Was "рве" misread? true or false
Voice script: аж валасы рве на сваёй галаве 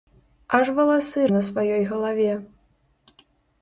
true